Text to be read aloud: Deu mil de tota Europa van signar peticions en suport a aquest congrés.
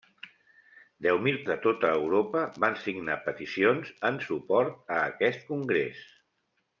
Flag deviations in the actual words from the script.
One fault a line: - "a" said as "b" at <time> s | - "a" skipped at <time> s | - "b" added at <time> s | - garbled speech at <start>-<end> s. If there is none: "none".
none